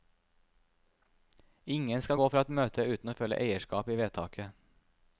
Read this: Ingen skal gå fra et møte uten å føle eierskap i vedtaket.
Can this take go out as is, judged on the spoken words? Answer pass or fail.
pass